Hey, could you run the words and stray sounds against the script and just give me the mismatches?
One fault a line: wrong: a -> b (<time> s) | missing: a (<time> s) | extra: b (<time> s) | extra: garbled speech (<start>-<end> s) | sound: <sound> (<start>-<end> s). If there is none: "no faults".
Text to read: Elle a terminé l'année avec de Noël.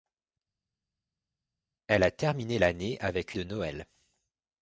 no faults